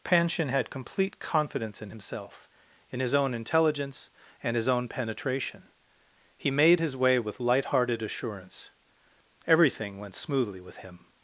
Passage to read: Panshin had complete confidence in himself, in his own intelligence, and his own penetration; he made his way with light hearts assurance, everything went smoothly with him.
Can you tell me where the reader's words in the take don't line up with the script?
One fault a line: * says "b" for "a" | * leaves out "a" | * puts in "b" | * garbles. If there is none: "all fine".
* says "hearted" for "hearts"